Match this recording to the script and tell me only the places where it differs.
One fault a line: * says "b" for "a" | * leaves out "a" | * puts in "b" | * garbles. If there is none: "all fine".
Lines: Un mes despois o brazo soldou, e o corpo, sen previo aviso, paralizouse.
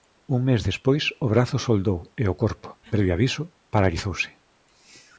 * leaves out "sen"